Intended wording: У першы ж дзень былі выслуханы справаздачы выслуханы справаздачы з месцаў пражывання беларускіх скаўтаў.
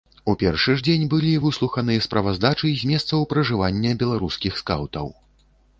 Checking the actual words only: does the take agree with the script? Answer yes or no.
no